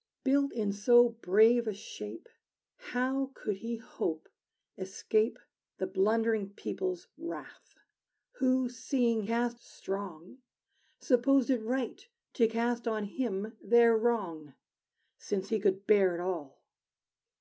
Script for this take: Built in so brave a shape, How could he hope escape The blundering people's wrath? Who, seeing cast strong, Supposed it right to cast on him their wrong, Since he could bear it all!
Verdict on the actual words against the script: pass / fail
pass